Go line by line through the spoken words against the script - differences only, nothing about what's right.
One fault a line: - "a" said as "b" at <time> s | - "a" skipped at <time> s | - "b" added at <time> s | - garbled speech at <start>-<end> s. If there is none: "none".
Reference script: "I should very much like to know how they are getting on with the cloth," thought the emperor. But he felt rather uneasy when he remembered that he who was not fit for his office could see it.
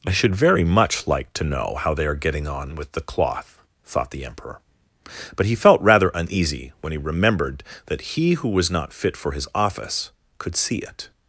none